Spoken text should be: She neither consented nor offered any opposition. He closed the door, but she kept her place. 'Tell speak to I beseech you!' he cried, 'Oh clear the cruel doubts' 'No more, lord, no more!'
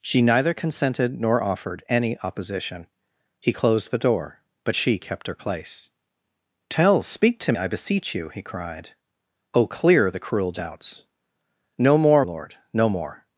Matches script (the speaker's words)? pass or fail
pass